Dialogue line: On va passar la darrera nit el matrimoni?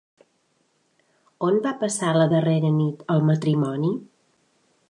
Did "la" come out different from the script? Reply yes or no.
no